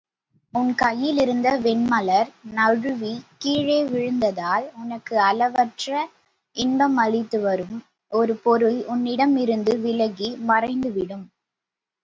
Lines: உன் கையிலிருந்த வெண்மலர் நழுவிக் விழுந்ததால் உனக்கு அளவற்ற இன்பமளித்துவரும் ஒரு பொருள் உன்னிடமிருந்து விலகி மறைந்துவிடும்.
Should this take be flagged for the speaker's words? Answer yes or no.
yes